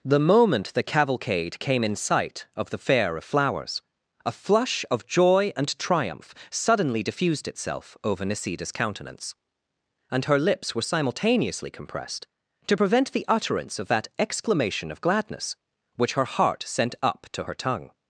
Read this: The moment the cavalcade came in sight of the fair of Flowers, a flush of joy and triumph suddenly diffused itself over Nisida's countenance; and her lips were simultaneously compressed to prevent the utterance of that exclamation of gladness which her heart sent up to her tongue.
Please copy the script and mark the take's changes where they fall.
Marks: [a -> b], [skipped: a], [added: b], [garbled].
The moment the cavalcade came in sight of the fair of Flowers, a flush of joy and triumph suddenly diffused itself over Nisida's countenance; and her lips were simultaneously compressed to prevent the utterance of that exclamation of gladness which her heart sent up to her tongue.